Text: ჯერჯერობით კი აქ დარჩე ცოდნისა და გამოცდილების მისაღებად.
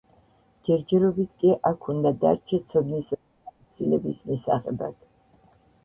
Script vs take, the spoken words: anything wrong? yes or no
yes